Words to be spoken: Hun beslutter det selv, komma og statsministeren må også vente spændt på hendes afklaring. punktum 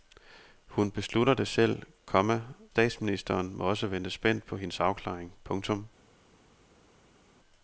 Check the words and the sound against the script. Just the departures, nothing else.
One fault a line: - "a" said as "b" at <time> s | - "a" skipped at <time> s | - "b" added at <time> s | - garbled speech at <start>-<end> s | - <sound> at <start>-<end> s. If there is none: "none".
- "og" skipped at 2.4 s